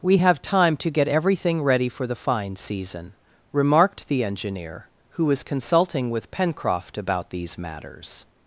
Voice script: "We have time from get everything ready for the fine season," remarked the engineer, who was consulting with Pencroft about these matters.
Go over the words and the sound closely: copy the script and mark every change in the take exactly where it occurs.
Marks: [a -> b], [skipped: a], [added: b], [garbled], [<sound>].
"We have time [from -> to] get everything ready for the fine season," remarked the engineer, who was consulting with Pencroft about these matters.